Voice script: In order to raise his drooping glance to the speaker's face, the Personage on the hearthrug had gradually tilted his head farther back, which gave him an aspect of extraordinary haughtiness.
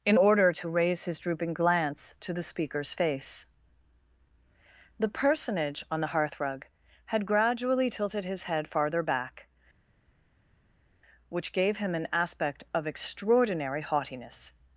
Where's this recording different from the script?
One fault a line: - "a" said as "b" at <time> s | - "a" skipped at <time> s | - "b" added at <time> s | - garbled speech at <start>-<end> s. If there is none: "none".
none